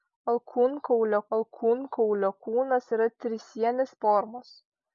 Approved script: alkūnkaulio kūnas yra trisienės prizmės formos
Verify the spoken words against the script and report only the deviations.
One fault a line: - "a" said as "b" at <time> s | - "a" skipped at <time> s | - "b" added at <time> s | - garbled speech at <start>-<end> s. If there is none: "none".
- "alkūnkaulio" added at 1.4 s
- "prizmės" skipped at 4.0 s